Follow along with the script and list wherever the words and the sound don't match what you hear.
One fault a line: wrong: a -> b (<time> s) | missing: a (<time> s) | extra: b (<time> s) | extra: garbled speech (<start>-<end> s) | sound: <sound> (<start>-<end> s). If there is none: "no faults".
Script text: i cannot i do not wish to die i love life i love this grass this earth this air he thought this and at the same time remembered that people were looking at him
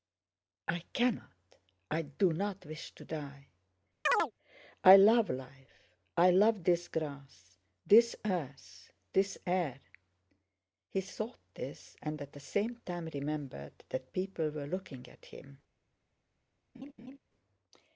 sound: chirp (4.1-4.3 s)
sound: laugh (16.7-17.2 s)